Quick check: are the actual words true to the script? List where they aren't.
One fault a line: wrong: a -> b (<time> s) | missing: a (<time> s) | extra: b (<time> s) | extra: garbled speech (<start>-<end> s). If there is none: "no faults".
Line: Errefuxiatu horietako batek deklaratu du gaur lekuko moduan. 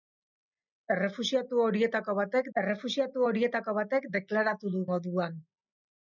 extra: errefuxiatu horietako batek (2.6 s)
missing: gaur lekuko (4.8 s)